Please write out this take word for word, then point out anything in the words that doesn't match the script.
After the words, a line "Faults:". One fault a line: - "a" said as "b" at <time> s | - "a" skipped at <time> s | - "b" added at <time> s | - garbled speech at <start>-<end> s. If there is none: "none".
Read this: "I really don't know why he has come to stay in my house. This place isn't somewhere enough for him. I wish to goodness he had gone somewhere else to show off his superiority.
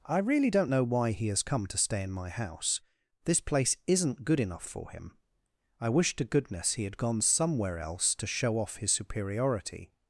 "I really don't know why he has come to stay in my house. This place isn't good enough for him. I wish to goodness he had gone somewhere else to show off his superiority.
Faults:
- "somewhere" said as "good" at 4.2 s